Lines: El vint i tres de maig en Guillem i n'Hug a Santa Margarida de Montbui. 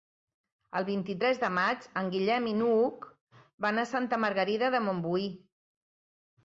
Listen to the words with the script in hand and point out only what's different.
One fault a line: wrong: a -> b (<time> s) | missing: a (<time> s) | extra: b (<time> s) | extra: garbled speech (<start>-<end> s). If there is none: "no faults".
extra: van (3.7 s)